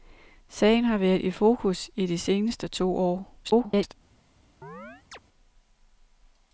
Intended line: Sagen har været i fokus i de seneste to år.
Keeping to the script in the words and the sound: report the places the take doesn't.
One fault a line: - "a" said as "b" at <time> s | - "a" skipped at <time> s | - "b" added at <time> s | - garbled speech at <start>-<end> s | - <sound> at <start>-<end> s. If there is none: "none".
- garbled speech at 3.4-3.9 s
- chirp at 4.6-5.2 s